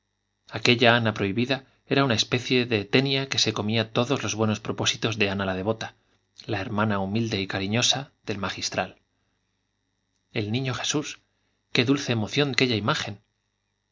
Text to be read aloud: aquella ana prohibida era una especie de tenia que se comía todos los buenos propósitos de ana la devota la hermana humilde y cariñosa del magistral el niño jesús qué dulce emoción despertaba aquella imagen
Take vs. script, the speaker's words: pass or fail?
fail